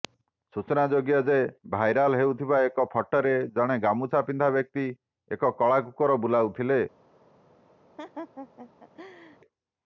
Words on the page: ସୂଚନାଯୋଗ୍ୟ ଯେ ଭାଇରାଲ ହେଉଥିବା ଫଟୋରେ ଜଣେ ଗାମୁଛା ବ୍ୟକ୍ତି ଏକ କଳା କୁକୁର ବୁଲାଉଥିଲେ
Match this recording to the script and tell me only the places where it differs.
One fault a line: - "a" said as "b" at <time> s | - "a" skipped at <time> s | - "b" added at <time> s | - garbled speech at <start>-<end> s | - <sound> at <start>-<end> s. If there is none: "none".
- "ଏକ" added at 2.7 s
- "ପିନ୍ଧା" added at 4.3 s
- laugh at 8.0-9.4 s